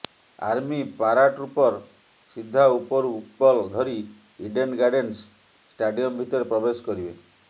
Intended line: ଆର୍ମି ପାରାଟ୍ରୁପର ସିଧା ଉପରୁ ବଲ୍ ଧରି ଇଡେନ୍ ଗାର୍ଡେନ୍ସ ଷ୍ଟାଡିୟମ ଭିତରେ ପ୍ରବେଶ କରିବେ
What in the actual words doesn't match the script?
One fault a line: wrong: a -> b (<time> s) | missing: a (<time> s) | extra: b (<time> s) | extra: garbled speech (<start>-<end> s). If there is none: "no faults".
no faults